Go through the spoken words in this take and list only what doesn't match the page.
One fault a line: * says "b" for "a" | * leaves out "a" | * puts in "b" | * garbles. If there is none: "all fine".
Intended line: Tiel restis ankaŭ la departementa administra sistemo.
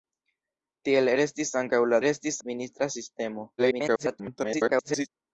* says "restis" for "departementa"
* garbles